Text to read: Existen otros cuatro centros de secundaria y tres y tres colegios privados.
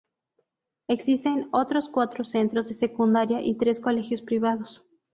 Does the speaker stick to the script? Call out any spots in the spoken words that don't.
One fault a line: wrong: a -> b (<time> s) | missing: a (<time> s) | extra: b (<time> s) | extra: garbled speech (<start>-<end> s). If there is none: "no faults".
missing: y tres (3.8 s)